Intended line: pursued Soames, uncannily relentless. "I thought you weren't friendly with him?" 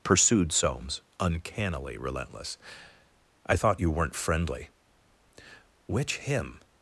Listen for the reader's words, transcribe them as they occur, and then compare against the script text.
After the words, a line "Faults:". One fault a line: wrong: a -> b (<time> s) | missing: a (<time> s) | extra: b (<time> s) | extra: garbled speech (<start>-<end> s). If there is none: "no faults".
pursued Soames, uncannily relentless. "I thought you weren't friendly which him?"
Faults:
wrong: with -> which (5.9 s)